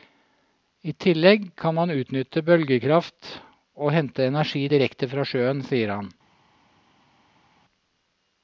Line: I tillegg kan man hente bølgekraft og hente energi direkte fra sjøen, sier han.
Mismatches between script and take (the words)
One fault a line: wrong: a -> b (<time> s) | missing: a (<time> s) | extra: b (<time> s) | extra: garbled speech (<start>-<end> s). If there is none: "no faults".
wrong: hente -> utnytte (1.9 s)